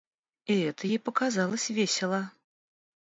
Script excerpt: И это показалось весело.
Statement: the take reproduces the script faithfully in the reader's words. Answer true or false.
false